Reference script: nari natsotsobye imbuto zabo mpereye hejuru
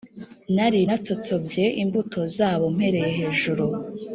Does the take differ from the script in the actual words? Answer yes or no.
no